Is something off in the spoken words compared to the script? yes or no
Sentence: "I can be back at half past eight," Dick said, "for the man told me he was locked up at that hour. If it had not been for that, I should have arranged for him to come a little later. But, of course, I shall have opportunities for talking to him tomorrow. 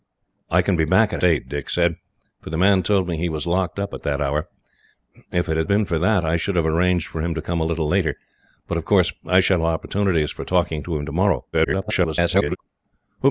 yes